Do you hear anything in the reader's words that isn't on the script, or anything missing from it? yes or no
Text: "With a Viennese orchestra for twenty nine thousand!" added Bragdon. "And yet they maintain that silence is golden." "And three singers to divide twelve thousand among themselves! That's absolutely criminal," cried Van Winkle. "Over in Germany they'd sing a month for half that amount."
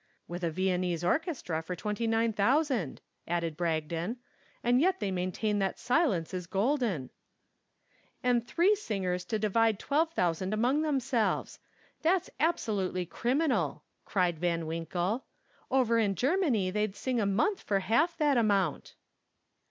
no